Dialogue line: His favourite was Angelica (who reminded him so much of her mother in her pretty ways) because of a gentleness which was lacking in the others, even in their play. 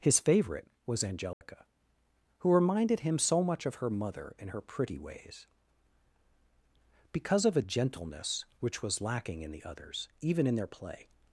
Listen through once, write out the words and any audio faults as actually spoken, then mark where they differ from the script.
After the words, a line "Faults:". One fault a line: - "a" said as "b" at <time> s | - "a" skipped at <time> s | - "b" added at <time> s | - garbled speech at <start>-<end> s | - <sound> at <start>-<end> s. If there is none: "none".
His favourite was Angelica (who reminded him so much of her mother in her pretty ways) because of a gentleness which was lacking in the others, even in their play.
Faults:
- dropout at 1.3-1.4 s